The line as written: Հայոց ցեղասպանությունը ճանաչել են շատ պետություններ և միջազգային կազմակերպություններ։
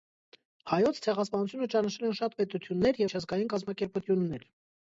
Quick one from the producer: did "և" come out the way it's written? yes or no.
no